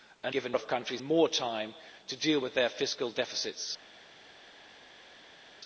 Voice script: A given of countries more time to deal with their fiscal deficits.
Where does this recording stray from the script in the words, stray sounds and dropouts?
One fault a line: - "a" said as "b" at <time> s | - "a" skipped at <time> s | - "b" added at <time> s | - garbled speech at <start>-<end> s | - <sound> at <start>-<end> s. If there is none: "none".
none